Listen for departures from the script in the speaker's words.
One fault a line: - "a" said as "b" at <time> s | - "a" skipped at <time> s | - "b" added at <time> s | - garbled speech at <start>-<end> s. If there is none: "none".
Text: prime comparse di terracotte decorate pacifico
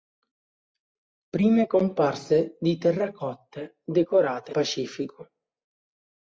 none